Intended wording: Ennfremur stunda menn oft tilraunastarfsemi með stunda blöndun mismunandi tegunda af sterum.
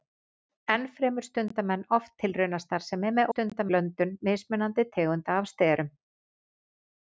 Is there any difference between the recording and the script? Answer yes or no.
no